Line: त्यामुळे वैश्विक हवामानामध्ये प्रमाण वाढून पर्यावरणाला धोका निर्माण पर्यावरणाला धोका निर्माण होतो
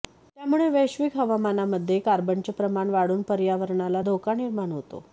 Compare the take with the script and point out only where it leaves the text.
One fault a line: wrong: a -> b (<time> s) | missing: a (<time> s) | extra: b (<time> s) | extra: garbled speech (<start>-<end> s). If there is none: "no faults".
extra: कार्बनचे (2.0 s)
missing: पर्यावरणाला धोका निर्माण (4.7 s)